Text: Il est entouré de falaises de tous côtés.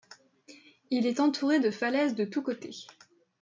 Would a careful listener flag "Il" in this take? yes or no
no